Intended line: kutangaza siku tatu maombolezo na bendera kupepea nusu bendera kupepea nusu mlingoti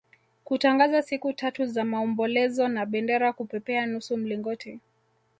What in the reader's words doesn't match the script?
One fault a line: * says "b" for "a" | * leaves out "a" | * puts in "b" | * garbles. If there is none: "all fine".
* puts in "za"
* leaves out "bendera kupepea nusu"